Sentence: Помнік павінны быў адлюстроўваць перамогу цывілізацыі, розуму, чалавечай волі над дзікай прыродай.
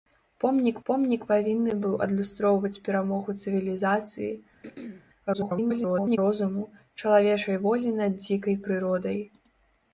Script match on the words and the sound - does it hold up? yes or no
no